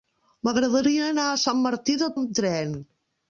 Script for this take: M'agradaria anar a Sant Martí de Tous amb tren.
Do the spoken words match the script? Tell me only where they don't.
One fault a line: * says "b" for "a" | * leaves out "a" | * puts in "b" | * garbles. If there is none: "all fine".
* leaves out "Tous"